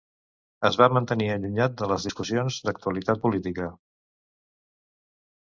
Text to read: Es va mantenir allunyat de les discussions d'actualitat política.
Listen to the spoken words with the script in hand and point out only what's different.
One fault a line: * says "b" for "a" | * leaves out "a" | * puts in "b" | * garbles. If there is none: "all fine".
all fine